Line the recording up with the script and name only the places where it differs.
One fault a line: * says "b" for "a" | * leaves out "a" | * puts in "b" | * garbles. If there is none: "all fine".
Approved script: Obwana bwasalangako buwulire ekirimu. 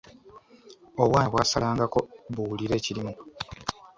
all fine